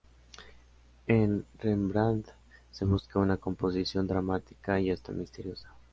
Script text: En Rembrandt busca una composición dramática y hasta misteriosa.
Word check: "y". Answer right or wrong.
right